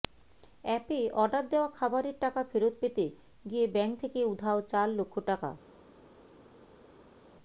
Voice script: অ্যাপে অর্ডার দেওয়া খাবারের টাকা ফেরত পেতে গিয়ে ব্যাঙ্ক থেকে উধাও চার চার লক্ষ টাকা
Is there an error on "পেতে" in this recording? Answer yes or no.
no